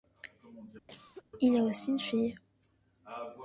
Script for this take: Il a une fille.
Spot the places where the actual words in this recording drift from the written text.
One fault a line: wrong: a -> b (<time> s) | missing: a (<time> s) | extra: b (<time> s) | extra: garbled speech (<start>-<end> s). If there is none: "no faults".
extra: aussi (1.6 s)